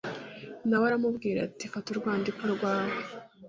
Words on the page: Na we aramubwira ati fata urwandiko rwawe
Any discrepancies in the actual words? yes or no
no